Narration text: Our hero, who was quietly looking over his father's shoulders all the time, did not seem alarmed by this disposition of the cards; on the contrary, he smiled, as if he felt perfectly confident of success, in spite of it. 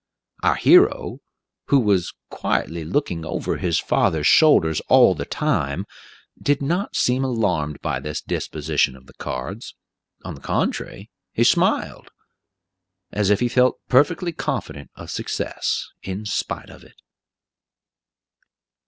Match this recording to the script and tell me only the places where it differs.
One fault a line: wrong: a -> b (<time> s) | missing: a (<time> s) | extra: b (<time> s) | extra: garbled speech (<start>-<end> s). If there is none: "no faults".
no faults